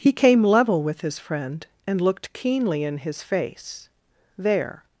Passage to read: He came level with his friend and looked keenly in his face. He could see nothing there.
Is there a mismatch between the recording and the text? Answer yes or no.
yes